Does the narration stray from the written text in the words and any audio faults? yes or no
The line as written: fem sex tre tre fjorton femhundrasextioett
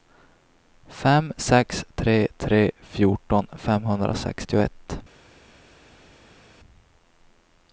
no